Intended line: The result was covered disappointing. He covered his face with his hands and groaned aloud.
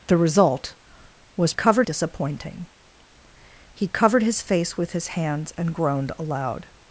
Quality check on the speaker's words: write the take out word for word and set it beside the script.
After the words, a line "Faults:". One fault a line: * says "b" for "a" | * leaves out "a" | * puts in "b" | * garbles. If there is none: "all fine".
The result was covered disappointing. He covered his face with his hands and groaned aloud.
Faults:
all fine